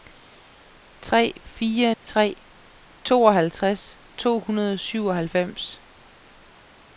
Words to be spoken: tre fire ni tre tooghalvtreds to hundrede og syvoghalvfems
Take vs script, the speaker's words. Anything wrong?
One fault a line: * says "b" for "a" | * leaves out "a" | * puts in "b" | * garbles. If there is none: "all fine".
* leaves out "ni"